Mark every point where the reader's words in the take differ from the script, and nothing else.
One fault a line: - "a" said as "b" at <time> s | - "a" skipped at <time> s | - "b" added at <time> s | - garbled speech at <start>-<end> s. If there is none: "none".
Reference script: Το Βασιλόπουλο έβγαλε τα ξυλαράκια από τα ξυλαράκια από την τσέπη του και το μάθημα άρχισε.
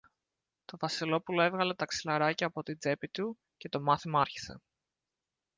- "τα ξυλαράκια από" skipped at 2.6 s